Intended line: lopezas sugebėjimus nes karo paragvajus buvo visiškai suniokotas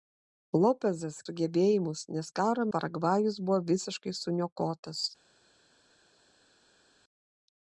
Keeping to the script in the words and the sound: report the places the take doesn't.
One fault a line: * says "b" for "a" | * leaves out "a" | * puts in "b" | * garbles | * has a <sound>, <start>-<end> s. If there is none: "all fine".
all fine